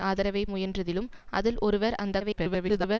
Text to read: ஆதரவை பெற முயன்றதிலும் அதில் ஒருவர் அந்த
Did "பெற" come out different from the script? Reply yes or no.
yes